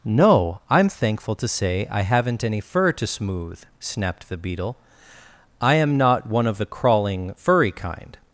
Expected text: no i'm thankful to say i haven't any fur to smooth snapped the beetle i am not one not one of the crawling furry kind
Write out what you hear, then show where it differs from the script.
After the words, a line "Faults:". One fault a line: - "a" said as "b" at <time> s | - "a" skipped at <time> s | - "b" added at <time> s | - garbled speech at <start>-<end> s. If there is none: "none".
no i'm thankful to say i haven't any fur to smooth snapped the beetle i am not one of the crawling furry kind
Faults:
- "not one" skipped at 6.5 s